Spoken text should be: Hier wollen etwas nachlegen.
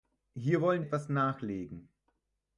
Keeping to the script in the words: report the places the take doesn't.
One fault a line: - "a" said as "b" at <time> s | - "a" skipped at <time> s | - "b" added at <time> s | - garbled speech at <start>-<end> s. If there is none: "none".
none